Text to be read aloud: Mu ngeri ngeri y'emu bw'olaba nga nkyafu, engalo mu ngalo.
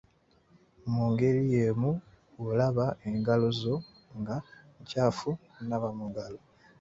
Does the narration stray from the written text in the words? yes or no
yes